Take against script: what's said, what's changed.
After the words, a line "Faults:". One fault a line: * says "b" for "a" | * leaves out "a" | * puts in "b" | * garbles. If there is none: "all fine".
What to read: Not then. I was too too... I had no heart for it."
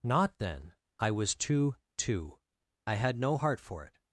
Not then. I was too too... I had no heart for it."
Faults:
all fine